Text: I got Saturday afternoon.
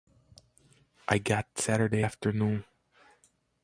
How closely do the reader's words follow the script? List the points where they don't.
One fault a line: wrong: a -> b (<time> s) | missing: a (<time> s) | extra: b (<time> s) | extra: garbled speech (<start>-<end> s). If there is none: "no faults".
no faults